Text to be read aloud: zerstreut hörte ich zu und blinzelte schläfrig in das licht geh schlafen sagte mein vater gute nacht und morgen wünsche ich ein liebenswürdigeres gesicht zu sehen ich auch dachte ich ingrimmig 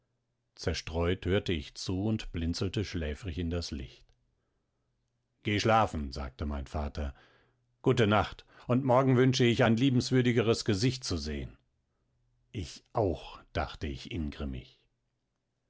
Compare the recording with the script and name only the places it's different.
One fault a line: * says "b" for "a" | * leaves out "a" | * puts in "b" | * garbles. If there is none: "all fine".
all fine